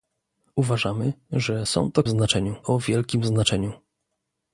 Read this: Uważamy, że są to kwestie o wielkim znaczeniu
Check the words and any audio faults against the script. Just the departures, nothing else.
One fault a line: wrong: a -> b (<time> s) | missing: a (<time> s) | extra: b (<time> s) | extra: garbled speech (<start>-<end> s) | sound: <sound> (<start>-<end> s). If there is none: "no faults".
wrong: kwestie -> znaczeniu (2.1 s)